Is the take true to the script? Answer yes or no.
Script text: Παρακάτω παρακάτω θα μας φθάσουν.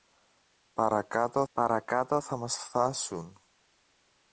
yes